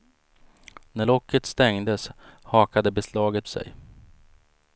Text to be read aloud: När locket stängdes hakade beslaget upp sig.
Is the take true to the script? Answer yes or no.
no